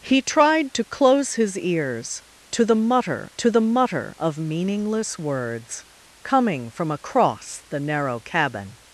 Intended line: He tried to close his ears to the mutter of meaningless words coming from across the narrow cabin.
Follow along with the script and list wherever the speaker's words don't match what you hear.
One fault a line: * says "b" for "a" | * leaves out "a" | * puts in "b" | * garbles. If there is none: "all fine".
* puts in "to the mutter"